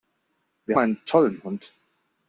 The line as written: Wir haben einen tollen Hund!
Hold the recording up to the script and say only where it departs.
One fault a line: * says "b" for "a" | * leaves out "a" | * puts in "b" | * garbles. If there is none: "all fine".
* leaves out "haben"